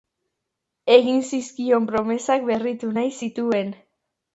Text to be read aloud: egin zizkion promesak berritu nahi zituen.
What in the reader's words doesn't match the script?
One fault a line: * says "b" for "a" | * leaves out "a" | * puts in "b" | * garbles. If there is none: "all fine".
all fine